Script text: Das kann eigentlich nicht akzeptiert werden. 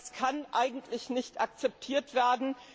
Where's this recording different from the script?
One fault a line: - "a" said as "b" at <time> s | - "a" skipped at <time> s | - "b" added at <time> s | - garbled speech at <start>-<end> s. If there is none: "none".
none